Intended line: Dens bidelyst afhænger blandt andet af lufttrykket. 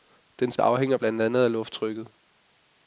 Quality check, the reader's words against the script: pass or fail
fail